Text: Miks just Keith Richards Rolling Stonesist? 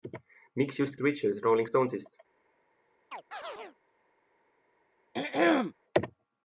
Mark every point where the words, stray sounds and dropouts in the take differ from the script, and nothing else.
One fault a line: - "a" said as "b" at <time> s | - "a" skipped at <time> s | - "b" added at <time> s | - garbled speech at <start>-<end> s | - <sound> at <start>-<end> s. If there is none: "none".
- "Keith" skipped at 1.0 s
- chirp at 3.1-3.8 s
- throat clearing at 5.1-5.7 s